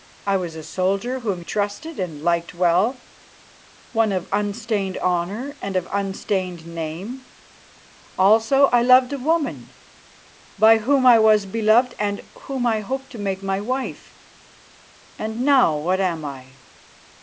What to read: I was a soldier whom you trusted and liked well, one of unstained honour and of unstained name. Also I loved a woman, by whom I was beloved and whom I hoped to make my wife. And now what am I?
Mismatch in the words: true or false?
true